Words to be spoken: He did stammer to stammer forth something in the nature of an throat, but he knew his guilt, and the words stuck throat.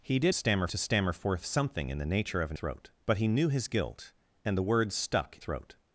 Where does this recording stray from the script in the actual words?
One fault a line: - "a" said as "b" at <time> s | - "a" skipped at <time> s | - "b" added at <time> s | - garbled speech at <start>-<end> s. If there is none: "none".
none